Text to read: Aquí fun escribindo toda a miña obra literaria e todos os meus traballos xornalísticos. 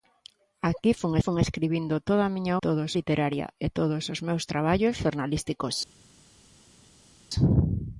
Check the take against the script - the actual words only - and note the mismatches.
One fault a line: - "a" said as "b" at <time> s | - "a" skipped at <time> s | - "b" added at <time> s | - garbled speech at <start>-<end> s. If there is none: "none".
- "fun" added at 1.2 s
- "obra" said as "todos" at 2.6 s